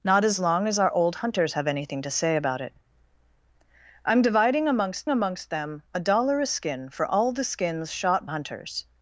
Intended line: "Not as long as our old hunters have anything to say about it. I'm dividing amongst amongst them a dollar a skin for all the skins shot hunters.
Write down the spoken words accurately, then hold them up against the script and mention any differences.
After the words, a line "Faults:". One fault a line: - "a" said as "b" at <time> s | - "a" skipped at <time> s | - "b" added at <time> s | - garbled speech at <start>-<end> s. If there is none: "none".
"Not as long as our old hunters have anything to say about it. I'm dividing amongst amongst them a dollar a skin for all the skins shot hunters.
Faults:
none